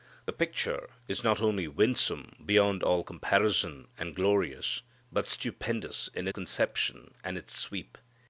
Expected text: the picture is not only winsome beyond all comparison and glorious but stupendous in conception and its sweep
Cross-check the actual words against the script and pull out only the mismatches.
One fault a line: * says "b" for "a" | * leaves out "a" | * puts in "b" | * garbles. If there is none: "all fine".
all fine